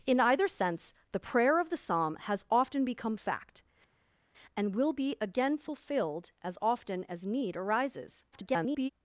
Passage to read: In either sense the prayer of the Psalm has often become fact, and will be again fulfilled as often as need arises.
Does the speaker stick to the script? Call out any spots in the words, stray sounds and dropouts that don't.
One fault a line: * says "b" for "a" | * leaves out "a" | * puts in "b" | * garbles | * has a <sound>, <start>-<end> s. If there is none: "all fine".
* garbles